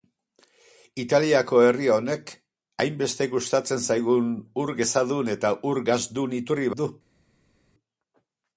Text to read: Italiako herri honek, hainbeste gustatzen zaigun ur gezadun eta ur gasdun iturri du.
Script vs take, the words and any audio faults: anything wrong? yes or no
no